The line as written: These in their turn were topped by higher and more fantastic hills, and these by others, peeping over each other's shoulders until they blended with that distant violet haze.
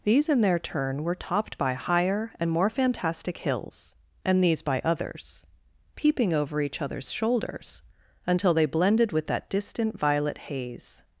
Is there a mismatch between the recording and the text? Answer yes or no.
no